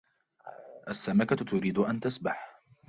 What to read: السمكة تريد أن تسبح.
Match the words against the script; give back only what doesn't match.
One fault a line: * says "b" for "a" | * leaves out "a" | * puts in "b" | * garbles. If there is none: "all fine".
all fine